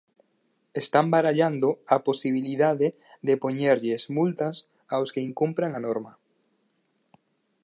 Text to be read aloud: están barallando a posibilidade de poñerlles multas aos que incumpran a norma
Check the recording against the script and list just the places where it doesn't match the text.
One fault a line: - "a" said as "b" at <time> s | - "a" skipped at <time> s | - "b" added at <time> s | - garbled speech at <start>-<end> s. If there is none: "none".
none